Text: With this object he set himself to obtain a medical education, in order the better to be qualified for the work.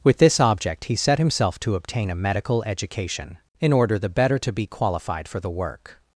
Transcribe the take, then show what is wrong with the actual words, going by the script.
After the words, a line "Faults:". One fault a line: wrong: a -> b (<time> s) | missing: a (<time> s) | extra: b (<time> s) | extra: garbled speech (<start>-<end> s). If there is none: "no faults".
With this object he set himself to obtain a medical education, in order the better to be qualified for the work.
Faults:
no faults